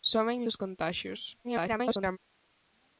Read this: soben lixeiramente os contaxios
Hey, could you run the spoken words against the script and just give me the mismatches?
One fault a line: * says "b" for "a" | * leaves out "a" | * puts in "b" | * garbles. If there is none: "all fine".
* leaves out "lixeiramente"
* garbles